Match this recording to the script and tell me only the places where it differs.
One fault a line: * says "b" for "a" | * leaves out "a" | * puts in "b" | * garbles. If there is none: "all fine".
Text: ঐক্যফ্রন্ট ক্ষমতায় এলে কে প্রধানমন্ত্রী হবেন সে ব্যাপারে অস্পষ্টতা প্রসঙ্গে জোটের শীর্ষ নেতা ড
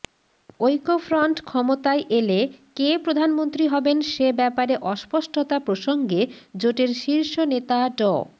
all fine